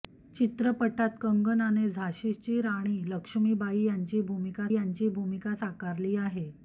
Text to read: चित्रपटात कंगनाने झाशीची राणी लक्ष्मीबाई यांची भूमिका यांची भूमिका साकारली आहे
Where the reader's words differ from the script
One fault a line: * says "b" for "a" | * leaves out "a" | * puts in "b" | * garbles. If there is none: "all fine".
all fine